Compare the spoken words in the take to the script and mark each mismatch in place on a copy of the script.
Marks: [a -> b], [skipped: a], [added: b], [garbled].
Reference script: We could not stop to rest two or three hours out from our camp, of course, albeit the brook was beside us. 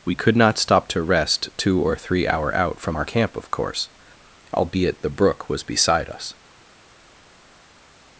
We could not stop to rest two or three [hours -> hour] out from our camp, of course, albeit the brook was beside us.